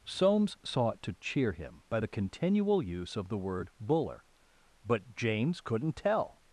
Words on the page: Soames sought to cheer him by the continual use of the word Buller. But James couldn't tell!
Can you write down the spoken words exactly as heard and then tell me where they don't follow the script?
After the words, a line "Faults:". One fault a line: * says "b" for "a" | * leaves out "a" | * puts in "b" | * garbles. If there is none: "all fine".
Soames sought to cheer him by the continual use of the word Buller. But James couldn't tell!
Faults:
all fine